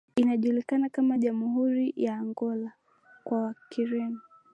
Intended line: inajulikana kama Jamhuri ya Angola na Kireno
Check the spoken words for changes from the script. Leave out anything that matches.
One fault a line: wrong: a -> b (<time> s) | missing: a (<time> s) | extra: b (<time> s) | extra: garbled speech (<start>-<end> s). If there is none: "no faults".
wrong: na -> kwa (3.2 s)